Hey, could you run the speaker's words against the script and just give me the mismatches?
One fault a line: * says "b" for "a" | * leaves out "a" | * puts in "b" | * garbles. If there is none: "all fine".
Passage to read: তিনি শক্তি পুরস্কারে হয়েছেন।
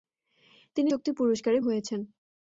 all fine